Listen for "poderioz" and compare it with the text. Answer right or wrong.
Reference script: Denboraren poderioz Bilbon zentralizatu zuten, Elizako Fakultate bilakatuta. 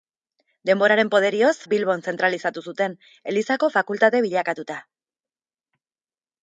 right